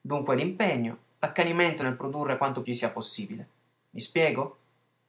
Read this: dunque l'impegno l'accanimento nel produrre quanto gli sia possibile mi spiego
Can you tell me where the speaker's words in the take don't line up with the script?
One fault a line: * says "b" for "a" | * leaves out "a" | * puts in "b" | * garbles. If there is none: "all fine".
all fine